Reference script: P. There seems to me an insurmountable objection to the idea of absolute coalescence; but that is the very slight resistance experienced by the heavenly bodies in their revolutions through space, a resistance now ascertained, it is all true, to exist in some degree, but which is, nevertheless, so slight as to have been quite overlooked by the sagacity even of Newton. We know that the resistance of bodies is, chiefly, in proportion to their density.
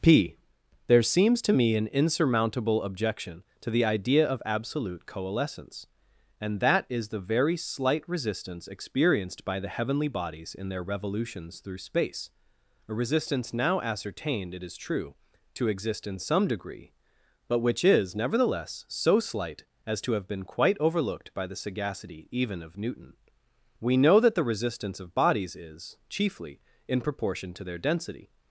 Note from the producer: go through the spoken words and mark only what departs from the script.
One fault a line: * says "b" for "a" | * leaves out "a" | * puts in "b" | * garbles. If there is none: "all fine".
* says "and" for "but"
* leaves out "all"